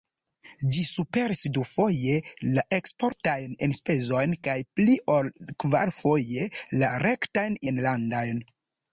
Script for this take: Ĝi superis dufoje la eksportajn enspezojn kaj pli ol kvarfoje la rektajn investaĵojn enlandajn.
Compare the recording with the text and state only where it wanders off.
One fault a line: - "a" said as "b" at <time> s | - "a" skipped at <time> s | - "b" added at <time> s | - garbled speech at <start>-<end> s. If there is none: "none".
- "investaĵojn" skipped at 7.6 s